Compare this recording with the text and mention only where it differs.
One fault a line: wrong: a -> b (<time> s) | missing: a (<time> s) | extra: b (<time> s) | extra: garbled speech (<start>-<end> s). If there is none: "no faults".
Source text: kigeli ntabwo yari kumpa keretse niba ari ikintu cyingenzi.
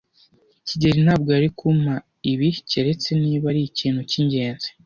extra: ibi (2.3 s)